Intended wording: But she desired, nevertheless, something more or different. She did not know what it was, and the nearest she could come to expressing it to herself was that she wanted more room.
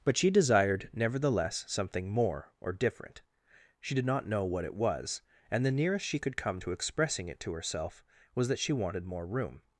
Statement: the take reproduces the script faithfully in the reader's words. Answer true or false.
true